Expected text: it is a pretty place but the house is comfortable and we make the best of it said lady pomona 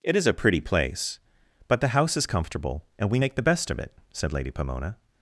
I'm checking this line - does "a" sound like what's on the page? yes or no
yes